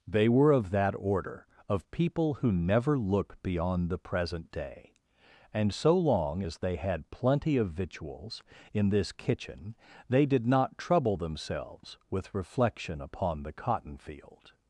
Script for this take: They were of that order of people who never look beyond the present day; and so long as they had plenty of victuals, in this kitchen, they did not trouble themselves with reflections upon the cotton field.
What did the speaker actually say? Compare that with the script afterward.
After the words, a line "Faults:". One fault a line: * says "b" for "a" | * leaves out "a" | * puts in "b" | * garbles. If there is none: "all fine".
They were of that order of people who never look beyond the present day; and so long as they had plenty of victuals, in this kitchen, they did not trouble themselves with reflection upon the cotton field.
Faults:
* says "reflection" for "reflections"